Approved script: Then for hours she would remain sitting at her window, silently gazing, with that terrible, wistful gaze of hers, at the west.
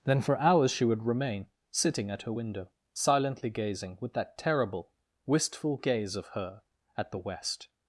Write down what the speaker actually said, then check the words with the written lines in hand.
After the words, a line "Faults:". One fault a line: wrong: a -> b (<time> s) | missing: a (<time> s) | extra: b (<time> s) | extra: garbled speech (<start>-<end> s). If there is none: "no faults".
Then for hours she would remain sitting at her window, silently gazing, with that terrible, wistful gaze of her, at the west.
Faults:
wrong: hers -> her (6.3 s)